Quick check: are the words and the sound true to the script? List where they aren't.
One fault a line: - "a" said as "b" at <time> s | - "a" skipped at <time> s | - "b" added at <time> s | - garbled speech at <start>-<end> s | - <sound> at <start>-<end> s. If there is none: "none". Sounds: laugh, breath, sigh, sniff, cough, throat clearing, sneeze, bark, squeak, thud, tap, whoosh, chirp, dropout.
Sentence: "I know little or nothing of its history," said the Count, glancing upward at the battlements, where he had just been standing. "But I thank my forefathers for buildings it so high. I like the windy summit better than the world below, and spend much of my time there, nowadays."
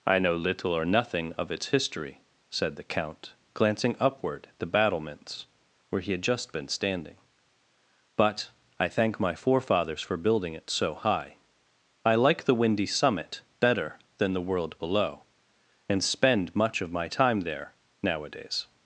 - "buildings" said as "building" at 10.2 s